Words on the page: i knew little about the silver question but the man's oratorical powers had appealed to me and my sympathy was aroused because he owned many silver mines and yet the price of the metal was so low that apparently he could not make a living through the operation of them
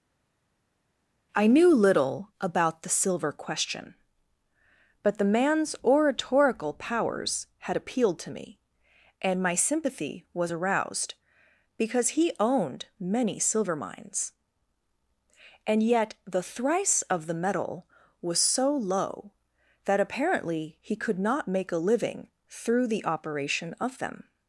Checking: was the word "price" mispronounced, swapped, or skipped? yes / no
yes